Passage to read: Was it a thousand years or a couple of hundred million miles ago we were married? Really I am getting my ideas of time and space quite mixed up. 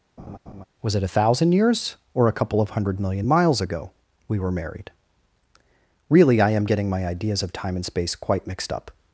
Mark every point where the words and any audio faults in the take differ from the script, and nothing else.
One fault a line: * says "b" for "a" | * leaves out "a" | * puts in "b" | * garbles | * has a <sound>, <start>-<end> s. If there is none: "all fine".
* has a laugh, 0.2-0.7 s